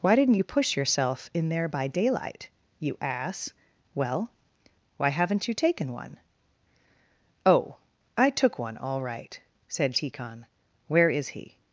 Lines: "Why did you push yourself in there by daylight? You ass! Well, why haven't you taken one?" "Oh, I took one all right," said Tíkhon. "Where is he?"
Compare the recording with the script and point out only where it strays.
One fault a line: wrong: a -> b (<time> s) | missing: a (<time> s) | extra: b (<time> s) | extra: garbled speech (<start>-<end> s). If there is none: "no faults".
wrong: did -> didn't (0.1 s)